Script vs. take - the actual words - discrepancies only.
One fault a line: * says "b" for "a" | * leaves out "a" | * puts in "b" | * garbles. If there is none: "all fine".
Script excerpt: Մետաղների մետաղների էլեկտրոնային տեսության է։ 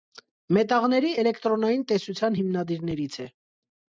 * leaves out "մետաղների"
* puts in "հիմնադիրներից"